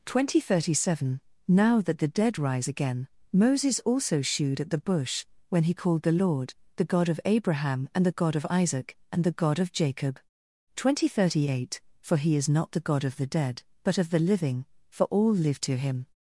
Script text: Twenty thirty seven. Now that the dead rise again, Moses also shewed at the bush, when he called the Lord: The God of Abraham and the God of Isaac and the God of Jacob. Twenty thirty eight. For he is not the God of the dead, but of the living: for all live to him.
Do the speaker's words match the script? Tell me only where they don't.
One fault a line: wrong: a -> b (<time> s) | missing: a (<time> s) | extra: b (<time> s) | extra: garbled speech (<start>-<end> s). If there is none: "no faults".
no faults